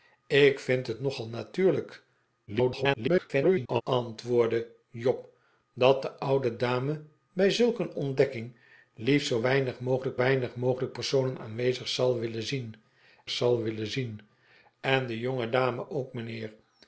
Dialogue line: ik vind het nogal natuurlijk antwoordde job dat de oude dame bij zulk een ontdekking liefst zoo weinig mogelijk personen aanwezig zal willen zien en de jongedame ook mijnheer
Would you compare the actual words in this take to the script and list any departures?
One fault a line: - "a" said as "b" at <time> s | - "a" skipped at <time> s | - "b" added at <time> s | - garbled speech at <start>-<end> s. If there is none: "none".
- garbled speech at 2.5-3.8 s
- "weinig mogelijk" added at 10.1 s
- "zal willen zien" added at 13.3 s